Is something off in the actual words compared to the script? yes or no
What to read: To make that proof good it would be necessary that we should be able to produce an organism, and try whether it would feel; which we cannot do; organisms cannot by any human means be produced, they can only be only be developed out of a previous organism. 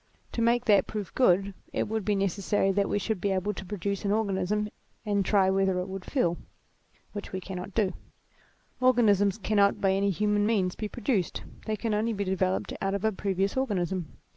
yes